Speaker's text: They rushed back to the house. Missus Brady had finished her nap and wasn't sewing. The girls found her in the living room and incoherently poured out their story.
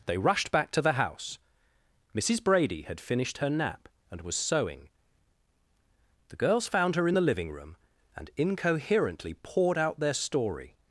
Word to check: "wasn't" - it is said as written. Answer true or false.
false